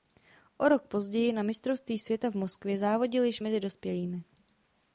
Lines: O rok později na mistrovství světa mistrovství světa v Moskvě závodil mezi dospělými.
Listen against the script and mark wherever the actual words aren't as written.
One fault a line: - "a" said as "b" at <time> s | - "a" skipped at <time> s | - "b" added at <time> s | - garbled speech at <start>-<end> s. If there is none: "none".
- "mistrovství světa" skipped at 2.3 s
- "již" added at 3.2 s